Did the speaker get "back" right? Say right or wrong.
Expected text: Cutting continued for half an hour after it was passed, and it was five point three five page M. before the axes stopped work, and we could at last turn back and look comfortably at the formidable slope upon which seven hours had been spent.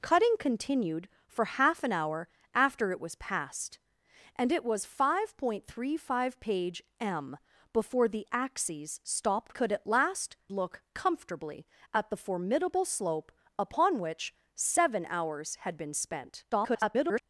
wrong